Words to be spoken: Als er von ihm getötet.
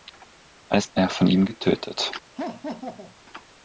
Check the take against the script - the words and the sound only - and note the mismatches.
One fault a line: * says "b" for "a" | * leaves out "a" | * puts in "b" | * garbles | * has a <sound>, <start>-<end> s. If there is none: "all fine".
* has a laugh, 2.4-3.2 s